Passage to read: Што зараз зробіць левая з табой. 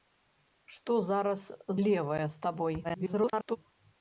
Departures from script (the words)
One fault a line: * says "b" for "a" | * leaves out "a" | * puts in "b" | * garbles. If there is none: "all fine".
* leaves out "зробіць"
* garbles